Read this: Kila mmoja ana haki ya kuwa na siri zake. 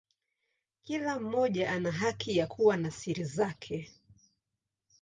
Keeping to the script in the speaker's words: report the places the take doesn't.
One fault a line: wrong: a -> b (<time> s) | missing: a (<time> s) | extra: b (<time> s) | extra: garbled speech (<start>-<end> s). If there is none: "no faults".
no faults